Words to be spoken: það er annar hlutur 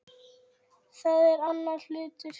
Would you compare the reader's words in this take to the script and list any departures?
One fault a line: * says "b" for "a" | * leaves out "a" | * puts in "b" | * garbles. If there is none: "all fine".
all fine